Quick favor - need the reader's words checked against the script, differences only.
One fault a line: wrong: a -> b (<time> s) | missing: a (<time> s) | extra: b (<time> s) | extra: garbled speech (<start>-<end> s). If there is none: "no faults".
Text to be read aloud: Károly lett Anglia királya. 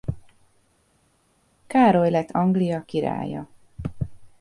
no faults